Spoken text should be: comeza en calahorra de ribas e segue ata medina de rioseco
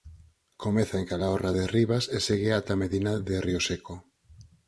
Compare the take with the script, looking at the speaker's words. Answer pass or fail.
pass